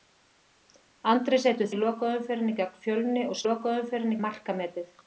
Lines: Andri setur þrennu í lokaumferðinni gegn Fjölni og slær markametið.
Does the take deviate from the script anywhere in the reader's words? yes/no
yes